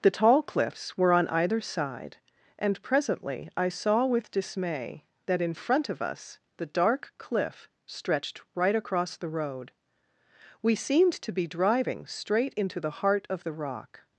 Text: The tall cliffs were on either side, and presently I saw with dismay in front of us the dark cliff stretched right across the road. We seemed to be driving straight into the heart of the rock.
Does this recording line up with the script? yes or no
no